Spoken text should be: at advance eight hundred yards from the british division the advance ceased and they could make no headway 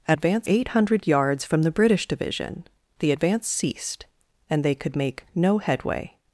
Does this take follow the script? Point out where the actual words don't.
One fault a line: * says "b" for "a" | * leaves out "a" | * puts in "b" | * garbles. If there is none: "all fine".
all fine